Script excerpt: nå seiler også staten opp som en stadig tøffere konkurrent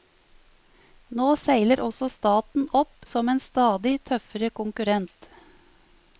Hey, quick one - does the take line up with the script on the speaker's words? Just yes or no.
yes